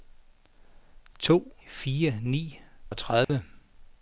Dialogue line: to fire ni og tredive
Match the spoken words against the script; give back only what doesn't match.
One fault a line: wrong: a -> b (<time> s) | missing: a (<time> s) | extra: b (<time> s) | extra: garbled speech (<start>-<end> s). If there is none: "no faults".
no faults